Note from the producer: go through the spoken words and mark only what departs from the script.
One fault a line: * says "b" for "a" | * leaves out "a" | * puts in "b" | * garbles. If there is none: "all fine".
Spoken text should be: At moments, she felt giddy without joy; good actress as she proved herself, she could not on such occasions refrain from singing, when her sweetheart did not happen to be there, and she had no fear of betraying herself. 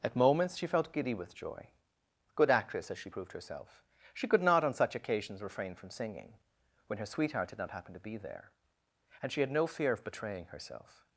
* says "with" for "without"